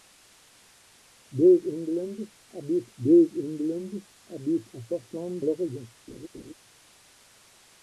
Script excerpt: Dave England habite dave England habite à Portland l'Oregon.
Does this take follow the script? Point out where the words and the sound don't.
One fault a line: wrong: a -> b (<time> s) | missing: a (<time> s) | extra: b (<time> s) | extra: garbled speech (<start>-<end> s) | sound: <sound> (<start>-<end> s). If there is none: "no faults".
sound: laugh (6.1-6.5 s)